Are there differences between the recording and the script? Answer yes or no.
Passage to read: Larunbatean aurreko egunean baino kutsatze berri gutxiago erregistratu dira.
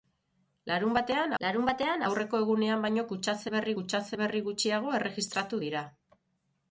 yes